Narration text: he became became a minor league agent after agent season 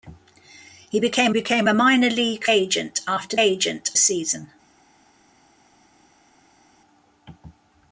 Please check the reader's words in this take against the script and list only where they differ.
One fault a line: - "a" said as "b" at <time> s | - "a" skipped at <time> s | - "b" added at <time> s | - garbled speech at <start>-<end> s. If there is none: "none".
none